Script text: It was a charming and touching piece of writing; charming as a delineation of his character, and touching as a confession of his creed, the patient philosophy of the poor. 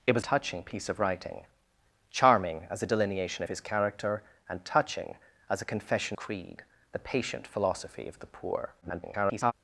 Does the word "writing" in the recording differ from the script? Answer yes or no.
no